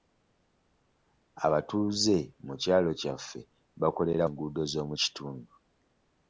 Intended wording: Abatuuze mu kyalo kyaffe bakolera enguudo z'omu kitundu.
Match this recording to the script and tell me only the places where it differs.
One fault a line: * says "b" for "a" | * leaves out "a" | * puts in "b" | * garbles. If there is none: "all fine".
all fine